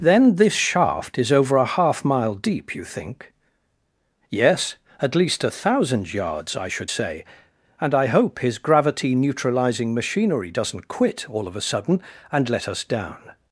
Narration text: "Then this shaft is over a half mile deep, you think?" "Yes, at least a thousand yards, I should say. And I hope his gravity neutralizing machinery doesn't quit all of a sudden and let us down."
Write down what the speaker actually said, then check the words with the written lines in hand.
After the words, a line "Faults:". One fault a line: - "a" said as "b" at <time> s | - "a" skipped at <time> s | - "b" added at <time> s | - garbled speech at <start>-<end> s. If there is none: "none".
"Then this shaft is over a half mile deep, you think?" "Yes, at least a thousand yards, I should say. And I hope his gravity neutralizing machinery doesn't quit all of a sudden and let us down."
Faults:
none